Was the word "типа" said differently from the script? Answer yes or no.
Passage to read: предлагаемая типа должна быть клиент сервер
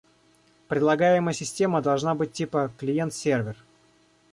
yes